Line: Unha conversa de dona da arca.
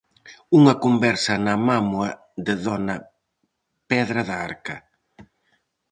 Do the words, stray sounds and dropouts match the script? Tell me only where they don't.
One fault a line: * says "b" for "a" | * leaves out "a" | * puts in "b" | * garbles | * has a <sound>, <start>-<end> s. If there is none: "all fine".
* puts in "na mámoa"
* puts in "pedra"